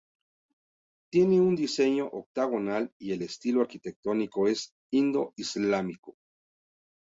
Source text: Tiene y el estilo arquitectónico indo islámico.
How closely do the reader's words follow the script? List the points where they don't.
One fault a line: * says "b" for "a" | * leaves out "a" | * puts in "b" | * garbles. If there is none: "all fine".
* puts in "un diseño octogonal"
* puts in "es"